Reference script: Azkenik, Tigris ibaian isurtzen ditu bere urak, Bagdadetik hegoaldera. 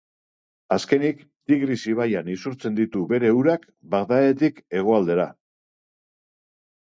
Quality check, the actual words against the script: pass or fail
pass